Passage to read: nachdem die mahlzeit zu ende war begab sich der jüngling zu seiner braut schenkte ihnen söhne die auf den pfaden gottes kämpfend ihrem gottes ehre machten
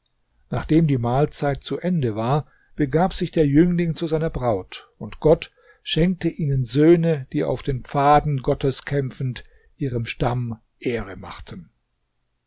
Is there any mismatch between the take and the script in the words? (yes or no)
yes